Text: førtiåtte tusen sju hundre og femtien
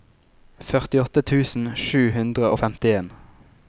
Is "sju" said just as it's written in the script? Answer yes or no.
yes